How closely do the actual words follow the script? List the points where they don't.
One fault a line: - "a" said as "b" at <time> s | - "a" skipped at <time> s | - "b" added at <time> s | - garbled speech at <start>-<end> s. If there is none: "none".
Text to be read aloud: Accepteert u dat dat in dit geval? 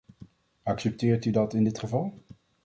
- "dat" skipped at 1.5 s